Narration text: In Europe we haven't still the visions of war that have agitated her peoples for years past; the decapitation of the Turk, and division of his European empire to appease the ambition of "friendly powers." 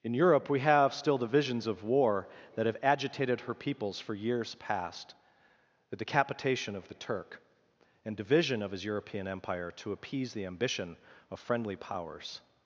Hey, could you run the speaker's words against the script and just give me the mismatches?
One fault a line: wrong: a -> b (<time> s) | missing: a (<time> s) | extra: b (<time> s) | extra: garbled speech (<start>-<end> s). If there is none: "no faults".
wrong: haven't -> have (0.6 s)